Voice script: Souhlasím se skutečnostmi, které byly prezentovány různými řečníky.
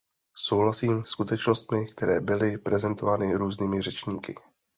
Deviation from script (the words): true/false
true